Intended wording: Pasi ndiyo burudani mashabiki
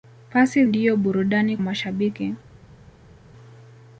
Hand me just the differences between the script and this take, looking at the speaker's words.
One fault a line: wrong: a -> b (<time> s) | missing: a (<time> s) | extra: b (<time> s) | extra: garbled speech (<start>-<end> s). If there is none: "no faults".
no faults